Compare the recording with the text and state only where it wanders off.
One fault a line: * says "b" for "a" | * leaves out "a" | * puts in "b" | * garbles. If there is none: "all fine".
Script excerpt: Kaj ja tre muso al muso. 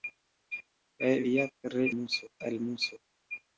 all fine